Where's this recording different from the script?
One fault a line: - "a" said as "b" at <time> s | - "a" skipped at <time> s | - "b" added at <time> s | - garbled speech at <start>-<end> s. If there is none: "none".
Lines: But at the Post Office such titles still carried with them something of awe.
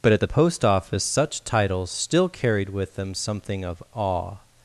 none